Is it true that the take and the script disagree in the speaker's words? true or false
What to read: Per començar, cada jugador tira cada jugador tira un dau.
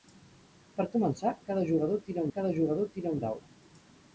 false